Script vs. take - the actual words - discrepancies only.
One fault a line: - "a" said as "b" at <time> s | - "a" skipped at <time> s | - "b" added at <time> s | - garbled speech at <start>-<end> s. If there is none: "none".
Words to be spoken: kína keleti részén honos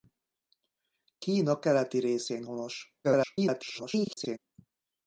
- garbled speech at 3.0-4.4 s